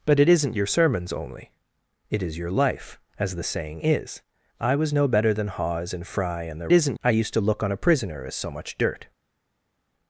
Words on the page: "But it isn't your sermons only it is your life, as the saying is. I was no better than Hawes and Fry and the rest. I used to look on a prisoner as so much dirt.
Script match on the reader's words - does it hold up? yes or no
no